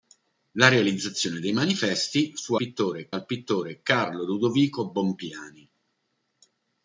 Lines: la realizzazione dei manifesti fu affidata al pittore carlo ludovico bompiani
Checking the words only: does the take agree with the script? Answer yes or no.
no